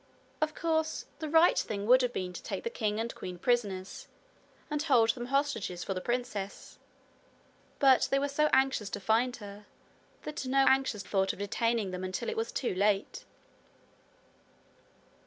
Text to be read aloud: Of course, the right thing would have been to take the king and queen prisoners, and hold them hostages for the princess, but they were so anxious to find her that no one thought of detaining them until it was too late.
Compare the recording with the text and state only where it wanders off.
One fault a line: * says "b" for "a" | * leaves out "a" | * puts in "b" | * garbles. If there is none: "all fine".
* says "anxious" for "one"